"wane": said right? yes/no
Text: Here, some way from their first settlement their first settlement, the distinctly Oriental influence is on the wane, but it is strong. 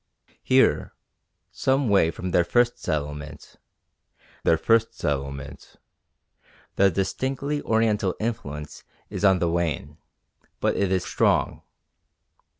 yes